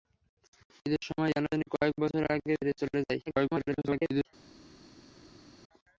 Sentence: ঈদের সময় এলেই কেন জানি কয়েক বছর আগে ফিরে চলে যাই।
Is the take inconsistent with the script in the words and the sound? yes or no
yes